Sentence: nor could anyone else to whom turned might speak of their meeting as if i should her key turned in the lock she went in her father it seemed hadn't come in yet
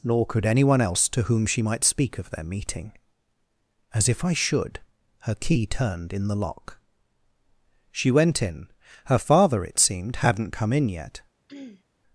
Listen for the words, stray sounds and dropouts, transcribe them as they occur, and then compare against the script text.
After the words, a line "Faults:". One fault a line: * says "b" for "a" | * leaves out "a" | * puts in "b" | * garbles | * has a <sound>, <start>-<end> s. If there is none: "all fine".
nor could anyone else to whom she might speak of their meeting as if i should her key turned in the lock she went in her father it seemed hadn't come in yet
Faults:
* says "she" for "turned"
* has a throat clearing, 11.5-11.8 s